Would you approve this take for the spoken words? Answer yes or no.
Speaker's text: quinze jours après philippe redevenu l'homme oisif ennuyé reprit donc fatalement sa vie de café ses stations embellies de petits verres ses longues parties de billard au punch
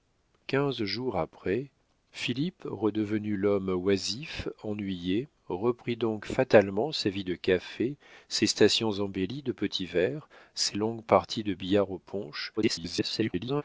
no